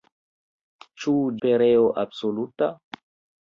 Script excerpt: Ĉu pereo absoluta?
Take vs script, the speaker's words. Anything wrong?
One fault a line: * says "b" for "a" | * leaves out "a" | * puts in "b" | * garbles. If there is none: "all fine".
all fine